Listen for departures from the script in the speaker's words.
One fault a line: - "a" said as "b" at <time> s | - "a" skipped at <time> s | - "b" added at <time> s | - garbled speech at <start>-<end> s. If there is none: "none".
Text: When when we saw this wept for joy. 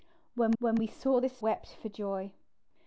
none